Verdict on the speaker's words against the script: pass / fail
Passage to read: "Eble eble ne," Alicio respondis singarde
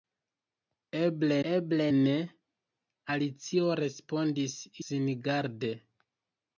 pass